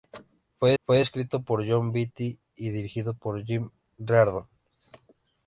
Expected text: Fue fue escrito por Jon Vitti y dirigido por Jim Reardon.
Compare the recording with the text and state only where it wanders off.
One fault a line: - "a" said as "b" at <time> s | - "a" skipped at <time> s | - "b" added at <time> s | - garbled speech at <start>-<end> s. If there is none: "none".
none